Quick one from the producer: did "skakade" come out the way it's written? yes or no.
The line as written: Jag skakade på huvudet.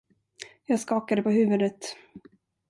yes